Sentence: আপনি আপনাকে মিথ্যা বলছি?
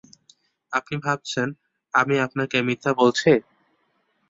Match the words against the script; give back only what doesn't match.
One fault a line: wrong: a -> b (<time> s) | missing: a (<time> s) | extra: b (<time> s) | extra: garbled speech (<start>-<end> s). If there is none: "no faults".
extra: ভাবছেন আমি (1.0 s)